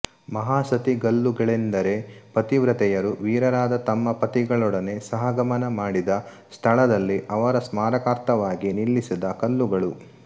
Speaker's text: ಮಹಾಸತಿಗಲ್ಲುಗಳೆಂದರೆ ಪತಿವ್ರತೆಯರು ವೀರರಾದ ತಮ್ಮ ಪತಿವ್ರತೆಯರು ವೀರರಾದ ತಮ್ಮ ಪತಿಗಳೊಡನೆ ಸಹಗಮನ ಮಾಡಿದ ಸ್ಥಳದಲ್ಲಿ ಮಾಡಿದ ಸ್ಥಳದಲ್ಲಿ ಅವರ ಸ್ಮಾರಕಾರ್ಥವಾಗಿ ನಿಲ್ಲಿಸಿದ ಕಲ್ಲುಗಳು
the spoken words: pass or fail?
fail